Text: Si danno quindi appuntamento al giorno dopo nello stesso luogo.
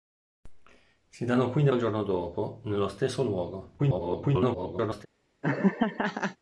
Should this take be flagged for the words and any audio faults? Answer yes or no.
yes